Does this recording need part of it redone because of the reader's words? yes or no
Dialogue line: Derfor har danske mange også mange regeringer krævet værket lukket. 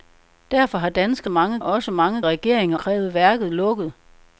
no